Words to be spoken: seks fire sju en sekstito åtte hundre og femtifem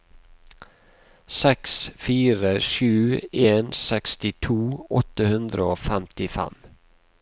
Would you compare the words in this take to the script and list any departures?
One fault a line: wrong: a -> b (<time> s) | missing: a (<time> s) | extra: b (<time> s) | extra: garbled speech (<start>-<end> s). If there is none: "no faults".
no faults